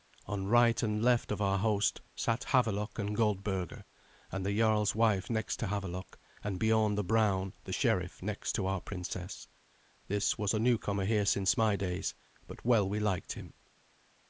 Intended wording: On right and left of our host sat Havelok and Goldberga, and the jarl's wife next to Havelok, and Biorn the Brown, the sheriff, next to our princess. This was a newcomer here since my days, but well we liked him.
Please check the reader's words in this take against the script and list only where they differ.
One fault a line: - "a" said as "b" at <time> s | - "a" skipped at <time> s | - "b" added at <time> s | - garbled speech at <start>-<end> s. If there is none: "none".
none